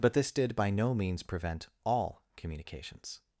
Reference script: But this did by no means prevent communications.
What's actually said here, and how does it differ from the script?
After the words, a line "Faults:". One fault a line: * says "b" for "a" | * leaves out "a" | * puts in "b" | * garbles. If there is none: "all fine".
But this did by no means prevent all communications.
Faults:
* puts in "all"